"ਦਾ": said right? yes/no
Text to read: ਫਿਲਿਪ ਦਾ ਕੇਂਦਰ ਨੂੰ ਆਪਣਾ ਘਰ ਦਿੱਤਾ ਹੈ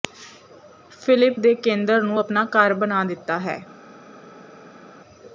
no